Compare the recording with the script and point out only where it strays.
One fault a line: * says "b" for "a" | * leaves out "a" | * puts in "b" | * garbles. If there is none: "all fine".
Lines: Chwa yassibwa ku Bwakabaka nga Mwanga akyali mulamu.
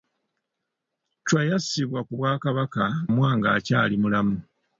* leaves out "nga"